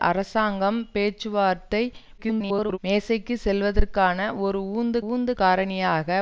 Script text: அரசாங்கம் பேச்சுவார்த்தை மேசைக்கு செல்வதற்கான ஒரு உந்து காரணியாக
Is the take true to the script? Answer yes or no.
no